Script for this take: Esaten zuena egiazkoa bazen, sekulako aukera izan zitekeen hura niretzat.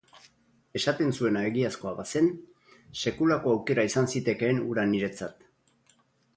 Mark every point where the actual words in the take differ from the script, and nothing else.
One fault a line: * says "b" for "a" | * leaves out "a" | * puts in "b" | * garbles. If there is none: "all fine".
all fine